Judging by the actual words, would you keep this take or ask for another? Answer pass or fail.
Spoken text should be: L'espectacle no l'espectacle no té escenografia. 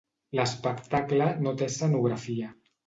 fail